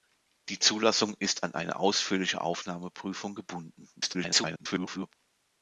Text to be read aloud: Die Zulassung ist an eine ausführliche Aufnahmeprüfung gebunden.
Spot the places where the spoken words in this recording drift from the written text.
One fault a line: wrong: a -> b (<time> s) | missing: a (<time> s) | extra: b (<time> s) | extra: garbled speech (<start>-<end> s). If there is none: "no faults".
extra: garbled speech (4.0-5.1 s)